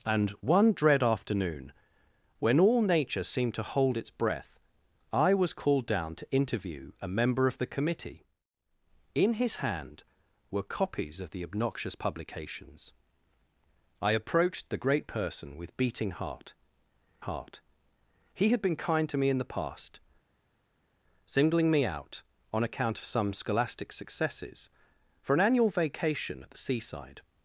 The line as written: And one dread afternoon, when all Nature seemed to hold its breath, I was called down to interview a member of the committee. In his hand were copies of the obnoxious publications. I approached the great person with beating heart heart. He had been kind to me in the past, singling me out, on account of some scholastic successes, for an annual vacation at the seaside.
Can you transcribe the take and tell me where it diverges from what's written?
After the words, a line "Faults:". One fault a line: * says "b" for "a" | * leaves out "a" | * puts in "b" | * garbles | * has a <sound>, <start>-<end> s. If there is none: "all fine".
And one dread afternoon, when all Nature seemed to hold its breath, I was called down to interview a member of the committee. In his hand were copies of the obnoxious publications. I approached the great person with beating heart heart. He had been kind to me in the past, singling me out, on account of some scholastic successes, for an annual vacation at the seaside.
Faults:
all fine